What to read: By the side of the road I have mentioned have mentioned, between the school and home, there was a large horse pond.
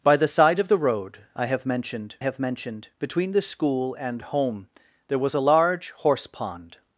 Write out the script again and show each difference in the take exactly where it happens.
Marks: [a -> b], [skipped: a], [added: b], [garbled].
By the side of the road I have mentioned have mentioned, between the school and home, there was a large horse pond.